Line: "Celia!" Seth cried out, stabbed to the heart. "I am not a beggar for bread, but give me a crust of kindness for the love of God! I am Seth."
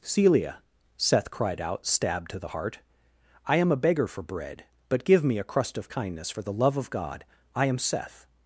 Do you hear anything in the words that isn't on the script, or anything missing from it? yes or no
yes